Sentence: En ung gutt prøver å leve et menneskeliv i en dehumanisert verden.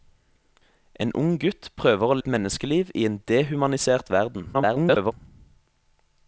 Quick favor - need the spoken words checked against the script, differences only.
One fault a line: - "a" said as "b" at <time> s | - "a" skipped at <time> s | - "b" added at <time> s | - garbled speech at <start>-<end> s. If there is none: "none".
- "leve" skipped at 2.2 s
- garbled speech at 4.5-5.1 s